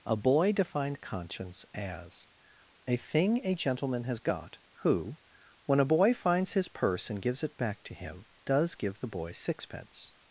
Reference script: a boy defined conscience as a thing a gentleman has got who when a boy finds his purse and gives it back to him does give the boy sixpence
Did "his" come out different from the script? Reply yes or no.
no